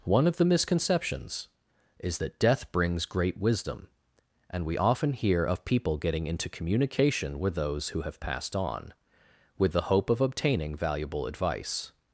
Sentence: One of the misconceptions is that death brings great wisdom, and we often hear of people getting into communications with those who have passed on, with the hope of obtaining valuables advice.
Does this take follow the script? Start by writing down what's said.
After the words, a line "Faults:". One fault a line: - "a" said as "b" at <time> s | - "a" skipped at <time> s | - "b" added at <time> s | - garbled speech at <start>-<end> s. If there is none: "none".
One of the misconceptions is that death brings great wisdom, and we often hear of people getting into communication with those who have passed on, with the hope of obtaining valuable advice.
Faults:
- "communications" said as "communication" at 6.5 s
- "valuables" said as "valuable" at 10.7 s